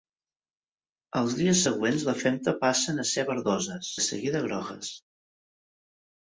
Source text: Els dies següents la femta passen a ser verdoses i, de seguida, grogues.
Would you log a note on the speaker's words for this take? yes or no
yes